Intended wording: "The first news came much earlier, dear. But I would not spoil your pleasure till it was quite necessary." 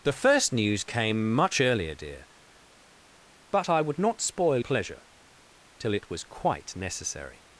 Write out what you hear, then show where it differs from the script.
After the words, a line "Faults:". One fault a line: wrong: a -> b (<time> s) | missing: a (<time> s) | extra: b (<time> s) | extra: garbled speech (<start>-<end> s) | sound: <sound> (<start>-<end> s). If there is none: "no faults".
"The first news came much earlier, dear. But I would not spoil pleasure till it was quite necessary."
Faults:
missing: your (4.6 s)